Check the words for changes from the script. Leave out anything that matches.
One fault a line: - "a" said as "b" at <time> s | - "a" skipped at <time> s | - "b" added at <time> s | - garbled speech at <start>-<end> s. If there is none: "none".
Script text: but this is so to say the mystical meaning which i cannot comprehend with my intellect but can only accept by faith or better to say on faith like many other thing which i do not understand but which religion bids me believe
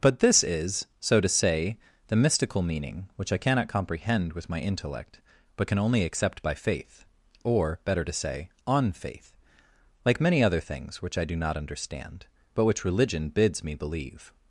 - "thing" said as "things" at 10.6 s